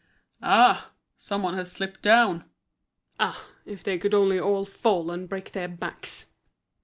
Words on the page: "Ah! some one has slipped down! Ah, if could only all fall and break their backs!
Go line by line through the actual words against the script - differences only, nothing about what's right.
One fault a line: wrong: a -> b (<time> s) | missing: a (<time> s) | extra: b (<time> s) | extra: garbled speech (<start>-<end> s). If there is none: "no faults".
extra: they (3.8 s)